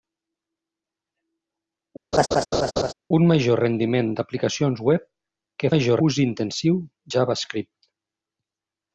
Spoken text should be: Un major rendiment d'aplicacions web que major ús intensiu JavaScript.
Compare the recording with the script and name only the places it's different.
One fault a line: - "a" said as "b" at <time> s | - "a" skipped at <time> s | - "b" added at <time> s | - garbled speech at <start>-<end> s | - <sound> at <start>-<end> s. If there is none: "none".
- laugh at 2.1-2.9 s